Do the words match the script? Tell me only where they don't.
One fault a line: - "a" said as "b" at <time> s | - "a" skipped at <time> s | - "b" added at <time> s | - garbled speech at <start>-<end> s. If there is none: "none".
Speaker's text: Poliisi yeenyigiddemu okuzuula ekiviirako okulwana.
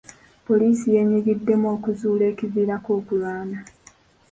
none